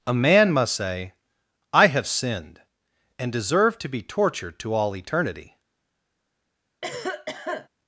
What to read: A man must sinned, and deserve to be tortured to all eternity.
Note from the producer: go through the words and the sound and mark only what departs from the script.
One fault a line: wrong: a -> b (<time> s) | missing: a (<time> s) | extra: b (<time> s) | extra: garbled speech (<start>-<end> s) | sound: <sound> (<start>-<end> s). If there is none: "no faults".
extra: say I have (0.7 s)
sound: cough (6.8-7.7 s)